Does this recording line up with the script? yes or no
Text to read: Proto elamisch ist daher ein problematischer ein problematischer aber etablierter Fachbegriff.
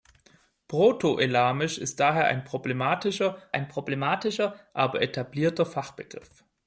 yes